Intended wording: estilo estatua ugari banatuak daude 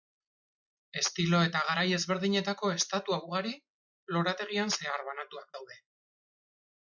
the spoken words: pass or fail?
fail